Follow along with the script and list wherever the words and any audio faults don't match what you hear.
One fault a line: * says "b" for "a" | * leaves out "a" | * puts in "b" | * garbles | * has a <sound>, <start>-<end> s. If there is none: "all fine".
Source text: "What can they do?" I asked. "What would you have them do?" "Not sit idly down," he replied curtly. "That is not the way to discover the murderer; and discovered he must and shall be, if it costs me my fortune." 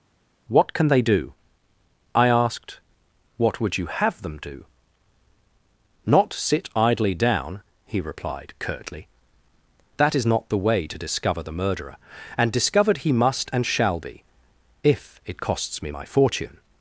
all fine